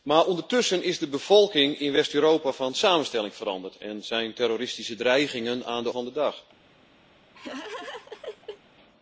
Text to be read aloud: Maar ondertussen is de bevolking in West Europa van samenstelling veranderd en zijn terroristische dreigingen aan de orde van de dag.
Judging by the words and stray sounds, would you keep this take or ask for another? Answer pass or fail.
fail